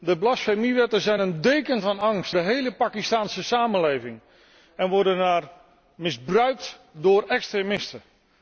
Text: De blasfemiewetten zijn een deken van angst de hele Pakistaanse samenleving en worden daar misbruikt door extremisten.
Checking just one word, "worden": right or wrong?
right